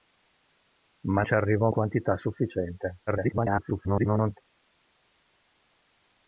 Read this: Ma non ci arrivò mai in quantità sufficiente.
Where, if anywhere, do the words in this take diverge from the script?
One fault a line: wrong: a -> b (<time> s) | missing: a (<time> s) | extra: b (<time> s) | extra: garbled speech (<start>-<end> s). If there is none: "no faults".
missing: non (1.2 s)
missing: mai in (1.7 s)
extra: garbled speech (3.1-4.4 s)